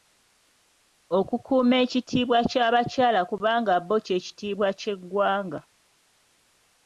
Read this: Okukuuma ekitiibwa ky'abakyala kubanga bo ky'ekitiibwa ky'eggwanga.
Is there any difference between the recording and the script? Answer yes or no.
no